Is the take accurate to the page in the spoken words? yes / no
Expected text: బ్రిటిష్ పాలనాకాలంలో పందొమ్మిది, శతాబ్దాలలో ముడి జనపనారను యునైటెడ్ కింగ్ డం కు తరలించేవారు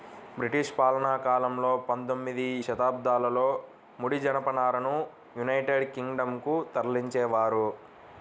yes